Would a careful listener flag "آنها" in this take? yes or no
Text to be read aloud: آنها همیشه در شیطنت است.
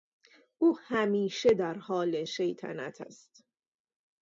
yes